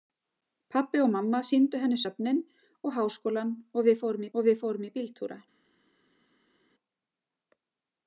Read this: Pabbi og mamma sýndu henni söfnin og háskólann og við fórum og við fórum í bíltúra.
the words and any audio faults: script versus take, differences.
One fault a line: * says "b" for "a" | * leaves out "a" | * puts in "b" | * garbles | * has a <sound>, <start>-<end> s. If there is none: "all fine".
all fine